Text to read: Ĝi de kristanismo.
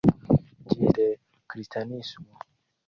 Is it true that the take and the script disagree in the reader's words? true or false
false